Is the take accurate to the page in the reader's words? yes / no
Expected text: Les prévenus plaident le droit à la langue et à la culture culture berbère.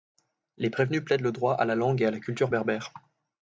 no